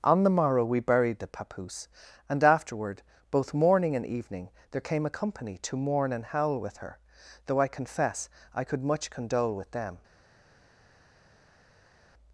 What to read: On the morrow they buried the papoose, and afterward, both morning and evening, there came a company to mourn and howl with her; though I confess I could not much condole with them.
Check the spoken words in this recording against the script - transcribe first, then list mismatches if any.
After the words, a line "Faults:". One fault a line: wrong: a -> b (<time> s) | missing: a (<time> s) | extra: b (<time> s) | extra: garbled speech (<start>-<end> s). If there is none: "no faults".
On the morrow we buried the papoose, and afterward, both morning and evening, there came a company to mourn and howl with her; though I confess I could much condole with them.
Faults:
wrong: they -> we (0.7 s)
missing: not (8.8 s)